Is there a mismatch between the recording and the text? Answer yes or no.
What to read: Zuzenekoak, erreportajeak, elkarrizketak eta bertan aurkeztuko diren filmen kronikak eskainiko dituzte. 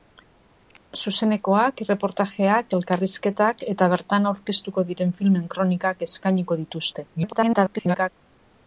yes